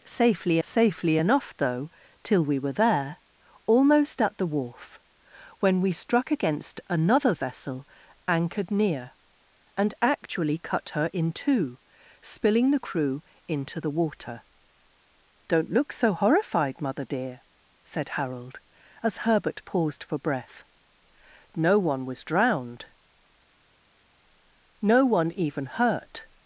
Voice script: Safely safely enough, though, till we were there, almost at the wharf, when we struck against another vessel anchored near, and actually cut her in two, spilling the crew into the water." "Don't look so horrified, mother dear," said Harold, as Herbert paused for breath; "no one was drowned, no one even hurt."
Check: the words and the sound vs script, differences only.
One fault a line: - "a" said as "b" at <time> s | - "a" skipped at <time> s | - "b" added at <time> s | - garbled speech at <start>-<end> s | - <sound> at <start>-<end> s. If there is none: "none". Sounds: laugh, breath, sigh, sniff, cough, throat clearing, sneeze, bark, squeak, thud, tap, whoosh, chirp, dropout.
none